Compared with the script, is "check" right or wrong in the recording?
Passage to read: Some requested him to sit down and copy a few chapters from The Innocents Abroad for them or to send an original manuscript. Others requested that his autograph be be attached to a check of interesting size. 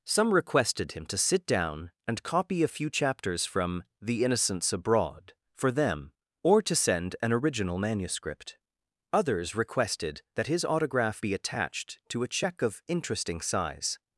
right